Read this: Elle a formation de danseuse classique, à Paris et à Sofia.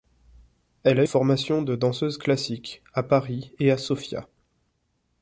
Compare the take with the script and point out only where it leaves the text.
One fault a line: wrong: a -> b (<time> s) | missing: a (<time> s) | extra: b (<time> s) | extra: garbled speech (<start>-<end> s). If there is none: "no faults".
no faults